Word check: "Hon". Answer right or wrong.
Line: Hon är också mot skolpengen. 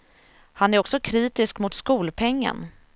wrong